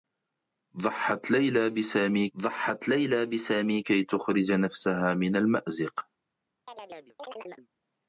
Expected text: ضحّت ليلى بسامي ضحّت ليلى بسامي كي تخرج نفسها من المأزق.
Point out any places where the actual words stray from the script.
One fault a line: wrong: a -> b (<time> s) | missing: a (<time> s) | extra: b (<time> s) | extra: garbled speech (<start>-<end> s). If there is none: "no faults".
no faults